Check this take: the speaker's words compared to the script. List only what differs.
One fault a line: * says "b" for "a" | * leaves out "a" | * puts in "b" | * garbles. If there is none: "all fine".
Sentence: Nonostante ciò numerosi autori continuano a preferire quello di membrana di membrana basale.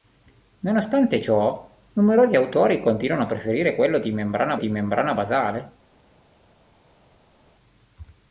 all fine